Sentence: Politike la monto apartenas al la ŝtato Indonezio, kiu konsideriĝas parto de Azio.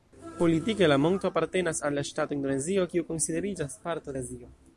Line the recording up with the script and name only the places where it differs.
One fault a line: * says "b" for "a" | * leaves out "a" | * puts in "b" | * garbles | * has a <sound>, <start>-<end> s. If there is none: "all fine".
all fine